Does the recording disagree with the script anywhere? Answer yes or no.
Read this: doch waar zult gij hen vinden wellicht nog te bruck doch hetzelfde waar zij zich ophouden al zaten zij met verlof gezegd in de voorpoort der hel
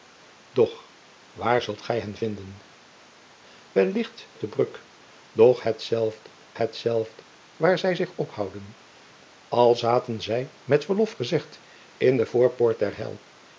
yes